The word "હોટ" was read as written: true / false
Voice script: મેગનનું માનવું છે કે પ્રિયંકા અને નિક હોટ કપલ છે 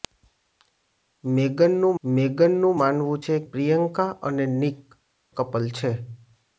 false